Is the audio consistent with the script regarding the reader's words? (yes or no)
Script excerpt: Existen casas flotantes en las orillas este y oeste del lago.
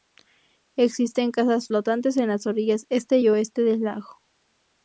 yes